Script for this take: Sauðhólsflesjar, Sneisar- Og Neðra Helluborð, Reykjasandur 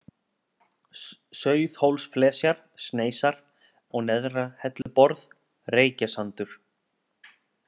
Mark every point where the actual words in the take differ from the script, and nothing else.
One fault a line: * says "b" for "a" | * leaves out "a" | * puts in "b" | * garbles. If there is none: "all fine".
all fine